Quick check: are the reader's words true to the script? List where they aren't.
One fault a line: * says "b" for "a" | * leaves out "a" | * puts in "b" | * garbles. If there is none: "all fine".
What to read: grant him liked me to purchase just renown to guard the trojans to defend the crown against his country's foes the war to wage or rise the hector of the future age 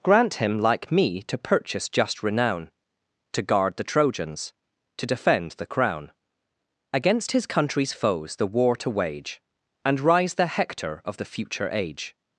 * says "like" for "liked"
* says "and" for "or"